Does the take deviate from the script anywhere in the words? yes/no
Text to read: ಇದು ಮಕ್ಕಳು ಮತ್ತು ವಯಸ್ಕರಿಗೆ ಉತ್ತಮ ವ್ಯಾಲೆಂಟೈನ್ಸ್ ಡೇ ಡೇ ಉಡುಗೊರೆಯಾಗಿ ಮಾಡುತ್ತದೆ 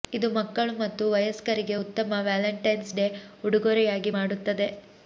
yes